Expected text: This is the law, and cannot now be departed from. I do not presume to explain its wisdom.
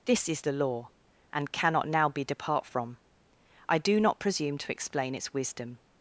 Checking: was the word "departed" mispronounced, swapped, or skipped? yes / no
yes